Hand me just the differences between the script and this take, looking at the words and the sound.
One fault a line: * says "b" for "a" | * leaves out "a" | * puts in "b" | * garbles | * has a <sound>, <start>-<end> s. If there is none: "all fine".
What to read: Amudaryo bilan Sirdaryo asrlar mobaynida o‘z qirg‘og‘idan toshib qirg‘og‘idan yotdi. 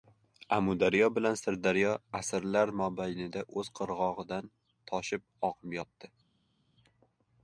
* says "oqib" for "qirg‘og‘idan"